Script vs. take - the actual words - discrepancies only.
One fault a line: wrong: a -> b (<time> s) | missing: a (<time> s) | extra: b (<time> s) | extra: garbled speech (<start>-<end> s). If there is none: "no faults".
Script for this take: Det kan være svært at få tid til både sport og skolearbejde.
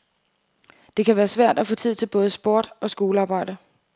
no faults